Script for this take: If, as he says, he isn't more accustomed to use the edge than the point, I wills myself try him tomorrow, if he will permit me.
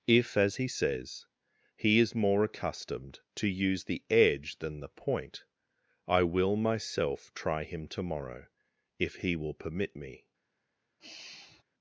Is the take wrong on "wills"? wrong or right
wrong